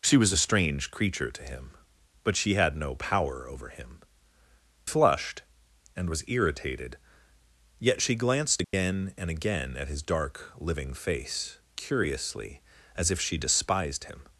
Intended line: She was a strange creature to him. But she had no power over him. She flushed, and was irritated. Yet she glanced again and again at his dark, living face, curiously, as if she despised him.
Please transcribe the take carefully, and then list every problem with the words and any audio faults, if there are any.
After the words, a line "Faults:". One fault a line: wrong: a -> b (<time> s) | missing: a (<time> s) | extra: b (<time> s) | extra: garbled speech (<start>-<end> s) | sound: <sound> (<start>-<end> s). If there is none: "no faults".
She was a strange creature to him. But she had no power over him. Flushed, and was irritated. Yet she glanced again and again at his dark, living face, curiously, as if she despised him.
Faults:
missing: She (4.0 s)
sound: dropout (8.6-8.7 s)